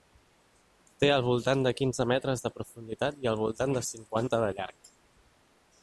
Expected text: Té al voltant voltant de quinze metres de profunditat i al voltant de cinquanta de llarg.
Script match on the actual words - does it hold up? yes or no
no